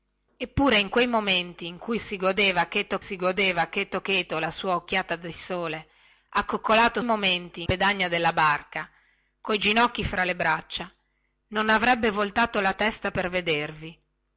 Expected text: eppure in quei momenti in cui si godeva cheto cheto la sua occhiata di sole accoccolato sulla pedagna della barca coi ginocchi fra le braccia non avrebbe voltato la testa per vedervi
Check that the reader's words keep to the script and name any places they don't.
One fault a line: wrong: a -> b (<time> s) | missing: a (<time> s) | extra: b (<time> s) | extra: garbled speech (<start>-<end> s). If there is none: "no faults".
extra: si godeva (3.0 s)
extra: cheto (4.0 s)
wrong: sulla -> momenti (7.0 s)